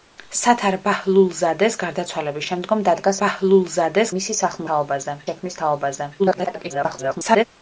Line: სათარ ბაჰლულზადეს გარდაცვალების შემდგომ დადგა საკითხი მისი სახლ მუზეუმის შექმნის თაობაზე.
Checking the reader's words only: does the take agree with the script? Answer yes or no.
no